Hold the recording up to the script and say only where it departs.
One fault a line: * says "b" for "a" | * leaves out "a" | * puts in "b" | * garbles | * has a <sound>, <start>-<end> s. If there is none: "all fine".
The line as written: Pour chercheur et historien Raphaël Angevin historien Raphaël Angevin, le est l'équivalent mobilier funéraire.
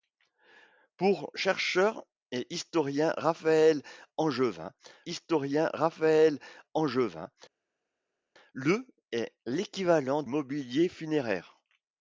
all fine